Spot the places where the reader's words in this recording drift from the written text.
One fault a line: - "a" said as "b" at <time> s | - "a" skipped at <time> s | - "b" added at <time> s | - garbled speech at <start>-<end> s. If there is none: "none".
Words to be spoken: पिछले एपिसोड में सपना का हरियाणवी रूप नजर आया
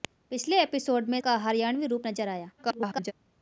- "सपना" skipped at 1.2 s
- garbled speech at 2.6-3.1 s